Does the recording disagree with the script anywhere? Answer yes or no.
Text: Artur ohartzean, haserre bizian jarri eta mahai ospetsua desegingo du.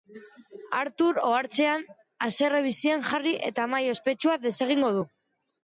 no